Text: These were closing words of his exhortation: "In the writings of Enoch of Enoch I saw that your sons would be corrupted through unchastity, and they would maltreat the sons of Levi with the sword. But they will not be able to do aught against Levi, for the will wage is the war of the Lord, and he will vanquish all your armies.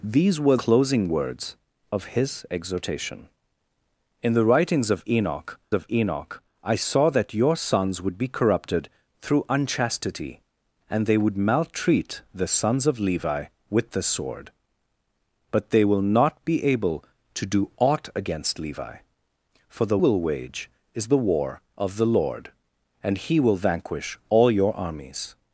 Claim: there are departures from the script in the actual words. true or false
false